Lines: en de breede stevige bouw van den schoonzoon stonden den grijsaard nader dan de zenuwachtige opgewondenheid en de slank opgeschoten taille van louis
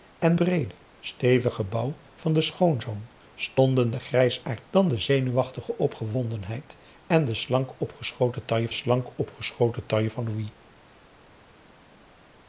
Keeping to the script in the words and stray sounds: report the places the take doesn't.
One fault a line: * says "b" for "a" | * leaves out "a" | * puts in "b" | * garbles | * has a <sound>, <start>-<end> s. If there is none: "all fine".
* leaves out "de"
* leaves out "nader"
* puts in "slank opgeschoten taille"